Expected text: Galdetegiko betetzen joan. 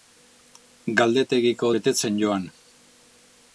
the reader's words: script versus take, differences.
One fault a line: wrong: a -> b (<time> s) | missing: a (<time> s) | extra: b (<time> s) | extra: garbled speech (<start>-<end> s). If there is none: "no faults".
no faults